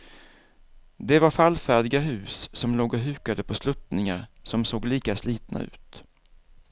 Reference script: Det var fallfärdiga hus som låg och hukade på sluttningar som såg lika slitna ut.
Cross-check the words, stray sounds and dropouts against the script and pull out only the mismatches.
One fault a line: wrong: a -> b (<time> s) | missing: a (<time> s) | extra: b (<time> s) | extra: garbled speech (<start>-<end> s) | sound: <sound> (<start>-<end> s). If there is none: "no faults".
no faults